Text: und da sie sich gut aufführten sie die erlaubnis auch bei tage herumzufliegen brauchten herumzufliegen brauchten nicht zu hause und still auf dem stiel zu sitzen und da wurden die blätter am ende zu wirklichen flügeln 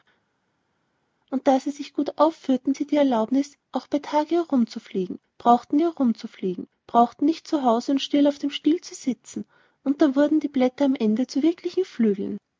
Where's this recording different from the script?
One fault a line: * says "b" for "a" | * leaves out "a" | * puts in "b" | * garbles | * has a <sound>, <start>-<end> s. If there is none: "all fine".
all fine